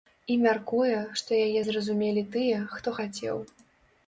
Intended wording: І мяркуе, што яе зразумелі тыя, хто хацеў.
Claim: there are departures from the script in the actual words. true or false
false